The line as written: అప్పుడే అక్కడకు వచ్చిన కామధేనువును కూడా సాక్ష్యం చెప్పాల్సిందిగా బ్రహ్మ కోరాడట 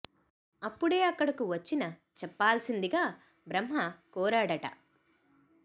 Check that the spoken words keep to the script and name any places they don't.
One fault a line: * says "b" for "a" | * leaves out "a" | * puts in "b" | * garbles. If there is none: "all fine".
* leaves out "కామధేనువును కూడా సాక్ష్యం"